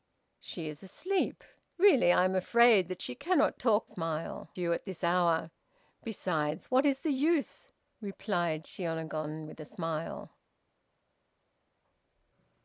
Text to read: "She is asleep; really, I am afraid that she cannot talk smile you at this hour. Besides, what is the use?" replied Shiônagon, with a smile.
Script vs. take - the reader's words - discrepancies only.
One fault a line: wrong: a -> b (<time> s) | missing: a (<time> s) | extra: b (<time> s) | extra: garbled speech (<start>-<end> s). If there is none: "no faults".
no faults